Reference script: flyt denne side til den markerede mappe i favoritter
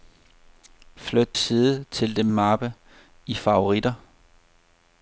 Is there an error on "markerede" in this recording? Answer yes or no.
yes